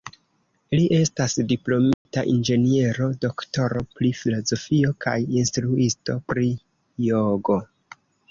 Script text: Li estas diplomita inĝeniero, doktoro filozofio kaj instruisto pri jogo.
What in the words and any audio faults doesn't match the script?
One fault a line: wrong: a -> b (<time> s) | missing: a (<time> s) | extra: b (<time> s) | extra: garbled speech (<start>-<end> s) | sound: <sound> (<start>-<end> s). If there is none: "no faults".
sound: dropout (1.9-2.1 s)
extra: pri (4.0 s)